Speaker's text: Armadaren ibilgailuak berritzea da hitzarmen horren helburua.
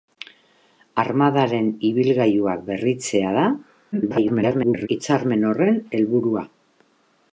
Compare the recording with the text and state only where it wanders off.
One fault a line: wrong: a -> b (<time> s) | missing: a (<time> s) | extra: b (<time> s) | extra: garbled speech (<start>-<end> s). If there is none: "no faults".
extra: garbled speech (3.9-4.9 s)